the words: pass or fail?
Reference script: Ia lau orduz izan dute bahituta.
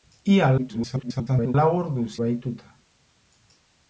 fail